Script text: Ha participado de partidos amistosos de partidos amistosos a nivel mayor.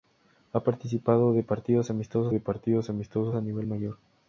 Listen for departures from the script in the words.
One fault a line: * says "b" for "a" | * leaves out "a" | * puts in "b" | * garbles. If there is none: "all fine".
all fine